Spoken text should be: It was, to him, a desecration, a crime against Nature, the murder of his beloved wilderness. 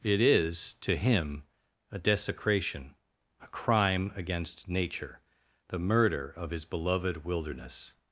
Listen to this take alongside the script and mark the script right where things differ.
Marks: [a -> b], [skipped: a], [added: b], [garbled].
It [was, -> is] to him, a desecration, a crime against Nature, the murder of his beloved wilderness.